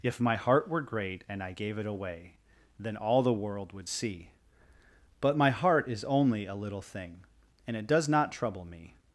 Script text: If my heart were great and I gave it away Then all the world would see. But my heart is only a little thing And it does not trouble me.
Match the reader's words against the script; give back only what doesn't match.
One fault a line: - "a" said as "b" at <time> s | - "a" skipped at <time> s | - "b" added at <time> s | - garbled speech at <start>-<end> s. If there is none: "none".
none